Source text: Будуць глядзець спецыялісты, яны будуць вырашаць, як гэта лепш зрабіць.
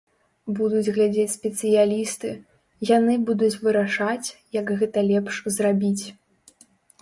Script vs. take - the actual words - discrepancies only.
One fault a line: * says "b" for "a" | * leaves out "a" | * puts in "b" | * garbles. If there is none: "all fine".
all fine